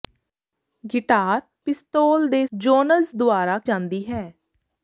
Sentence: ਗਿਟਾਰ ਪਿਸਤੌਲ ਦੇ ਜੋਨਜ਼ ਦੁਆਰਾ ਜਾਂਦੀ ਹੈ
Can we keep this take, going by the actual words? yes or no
yes